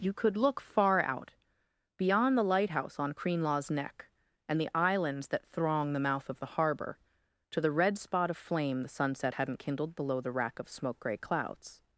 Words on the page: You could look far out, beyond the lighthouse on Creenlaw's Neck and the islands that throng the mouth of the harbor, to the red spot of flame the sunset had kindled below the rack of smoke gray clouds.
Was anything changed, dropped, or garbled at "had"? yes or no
yes